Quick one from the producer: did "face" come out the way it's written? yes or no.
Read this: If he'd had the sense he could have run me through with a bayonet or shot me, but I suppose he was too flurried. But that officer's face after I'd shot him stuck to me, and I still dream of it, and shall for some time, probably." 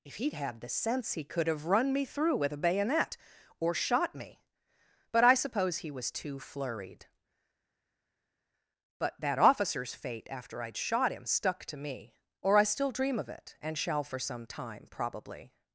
no